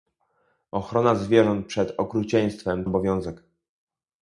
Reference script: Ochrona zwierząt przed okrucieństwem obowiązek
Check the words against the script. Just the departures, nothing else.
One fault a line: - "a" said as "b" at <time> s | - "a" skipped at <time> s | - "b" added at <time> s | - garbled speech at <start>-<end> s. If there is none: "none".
none